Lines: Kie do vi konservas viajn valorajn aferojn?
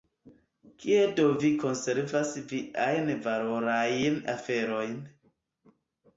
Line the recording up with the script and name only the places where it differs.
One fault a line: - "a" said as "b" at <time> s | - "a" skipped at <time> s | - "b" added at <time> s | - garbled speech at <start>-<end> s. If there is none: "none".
none